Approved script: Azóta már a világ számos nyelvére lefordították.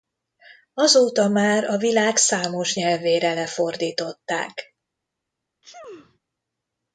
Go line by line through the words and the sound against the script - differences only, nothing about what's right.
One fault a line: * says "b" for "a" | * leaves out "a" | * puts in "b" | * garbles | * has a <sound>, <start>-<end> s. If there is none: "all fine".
* has a sneeze, 5.6-6.2 s